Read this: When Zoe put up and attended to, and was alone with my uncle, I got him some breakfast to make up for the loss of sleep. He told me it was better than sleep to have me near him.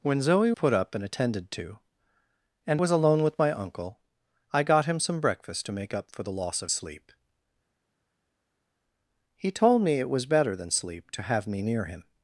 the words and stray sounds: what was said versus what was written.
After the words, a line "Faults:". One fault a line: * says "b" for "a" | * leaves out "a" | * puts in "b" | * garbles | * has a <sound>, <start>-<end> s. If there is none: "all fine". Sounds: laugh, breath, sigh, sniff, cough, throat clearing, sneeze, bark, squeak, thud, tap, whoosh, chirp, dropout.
When Zoe put up and attended to, and was alone with my uncle, I got him some breakfast to make up for the loss of sleep. He told me it was better than sleep to have me near him.
Faults:
all fine